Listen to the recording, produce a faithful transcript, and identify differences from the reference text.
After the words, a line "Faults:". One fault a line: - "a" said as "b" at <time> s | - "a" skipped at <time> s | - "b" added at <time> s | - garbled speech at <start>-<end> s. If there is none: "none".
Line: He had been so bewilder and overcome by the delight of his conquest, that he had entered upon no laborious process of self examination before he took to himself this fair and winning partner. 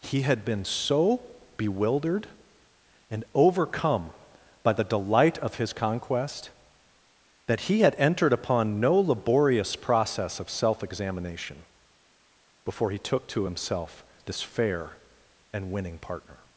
He had been so bewildered and overcome by the delight of his conquest, that he had entered upon no laborious process of self examination before he took to himself this fair and winning partner.
Faults:
- "bewilder" said as "bewildered" at 1.6 s